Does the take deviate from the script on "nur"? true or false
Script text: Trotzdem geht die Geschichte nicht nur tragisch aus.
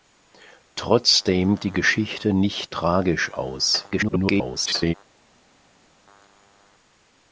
true